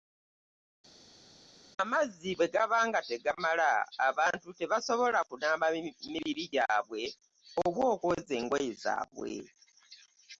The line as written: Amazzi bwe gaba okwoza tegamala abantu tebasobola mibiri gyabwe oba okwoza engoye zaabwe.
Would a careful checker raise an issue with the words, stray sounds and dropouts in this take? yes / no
yes